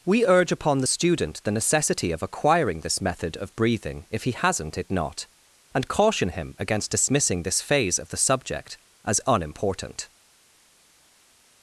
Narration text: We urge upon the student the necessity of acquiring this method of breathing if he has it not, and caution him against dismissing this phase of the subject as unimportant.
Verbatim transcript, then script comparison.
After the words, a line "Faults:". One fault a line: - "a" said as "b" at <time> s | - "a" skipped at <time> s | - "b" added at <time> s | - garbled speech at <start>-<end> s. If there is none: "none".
We urge upon the student the necessity of acquiring this method of breathing if he hasn't it not, and caution him against dismissing this phase of the subject as unimportant.
Faults:
- "has" said as "hasn't" at 4.3 s